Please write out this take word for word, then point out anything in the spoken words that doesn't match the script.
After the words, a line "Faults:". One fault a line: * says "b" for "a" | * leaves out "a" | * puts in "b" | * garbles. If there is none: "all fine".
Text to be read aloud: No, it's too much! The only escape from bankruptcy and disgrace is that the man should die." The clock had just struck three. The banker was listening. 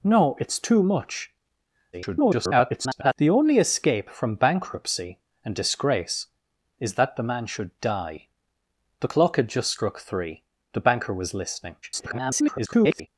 No, it's too much! [garbled] The only escape from bankruptcy and disgrace is that the man should die." The clock had just struck three. The banker was listening. [garbled]
Faults:
* garbles
* garbles